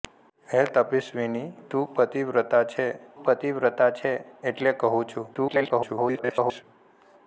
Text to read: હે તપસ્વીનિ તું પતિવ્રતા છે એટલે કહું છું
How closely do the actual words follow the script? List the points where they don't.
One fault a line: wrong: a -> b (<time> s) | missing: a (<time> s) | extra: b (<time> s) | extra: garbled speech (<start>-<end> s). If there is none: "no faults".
extra: પતિવ્રતા છે (3.2 s)
extra: garbled speech (5.3-6.6 s)